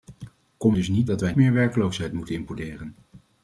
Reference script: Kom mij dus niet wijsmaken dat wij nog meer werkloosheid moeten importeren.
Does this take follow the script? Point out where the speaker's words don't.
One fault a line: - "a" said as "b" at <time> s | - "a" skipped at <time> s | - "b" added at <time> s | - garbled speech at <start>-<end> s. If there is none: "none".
- "mij" skipped at 0.7 s
- "wijsmaken" skipped at 1.1 s
- "nog" skipped at 1.3 s